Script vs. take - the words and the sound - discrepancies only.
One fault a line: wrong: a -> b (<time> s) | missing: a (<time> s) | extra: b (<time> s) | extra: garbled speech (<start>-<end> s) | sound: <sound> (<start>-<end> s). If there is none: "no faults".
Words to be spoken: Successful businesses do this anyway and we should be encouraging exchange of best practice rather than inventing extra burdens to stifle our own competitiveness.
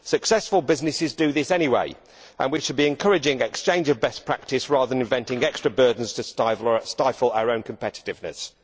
no faults